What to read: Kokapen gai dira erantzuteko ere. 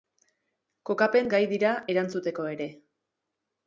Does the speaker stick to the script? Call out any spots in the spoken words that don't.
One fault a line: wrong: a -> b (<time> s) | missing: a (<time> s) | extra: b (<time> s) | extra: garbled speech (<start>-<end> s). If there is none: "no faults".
no faults